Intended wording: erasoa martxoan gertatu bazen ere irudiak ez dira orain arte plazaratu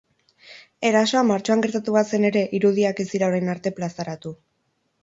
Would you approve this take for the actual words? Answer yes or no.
yes